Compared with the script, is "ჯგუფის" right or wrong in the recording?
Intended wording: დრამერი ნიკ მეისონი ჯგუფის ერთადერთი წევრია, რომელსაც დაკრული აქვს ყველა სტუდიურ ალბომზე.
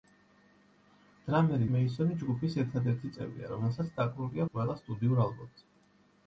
right